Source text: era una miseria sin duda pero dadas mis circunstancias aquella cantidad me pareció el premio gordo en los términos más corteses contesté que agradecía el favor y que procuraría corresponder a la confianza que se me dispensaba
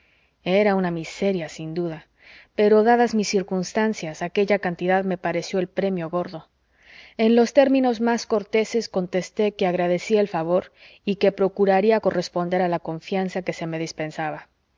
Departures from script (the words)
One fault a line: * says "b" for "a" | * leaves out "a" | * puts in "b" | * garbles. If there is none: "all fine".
all fine